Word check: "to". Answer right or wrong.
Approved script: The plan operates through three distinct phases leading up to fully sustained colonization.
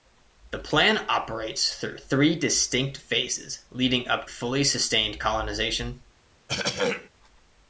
wrong